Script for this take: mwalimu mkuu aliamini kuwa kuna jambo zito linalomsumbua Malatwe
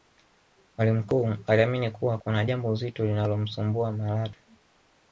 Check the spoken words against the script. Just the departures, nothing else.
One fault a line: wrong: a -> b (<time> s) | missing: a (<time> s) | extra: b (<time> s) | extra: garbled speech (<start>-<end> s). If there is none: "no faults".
no faults